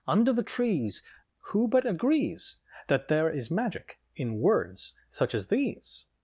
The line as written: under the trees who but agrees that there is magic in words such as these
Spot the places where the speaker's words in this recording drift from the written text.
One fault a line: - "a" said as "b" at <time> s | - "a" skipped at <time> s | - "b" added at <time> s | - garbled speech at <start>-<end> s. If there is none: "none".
none